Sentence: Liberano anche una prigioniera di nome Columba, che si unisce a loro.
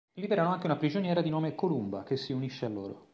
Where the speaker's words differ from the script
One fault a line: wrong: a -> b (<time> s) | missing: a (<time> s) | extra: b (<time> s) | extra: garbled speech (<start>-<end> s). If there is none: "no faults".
no faults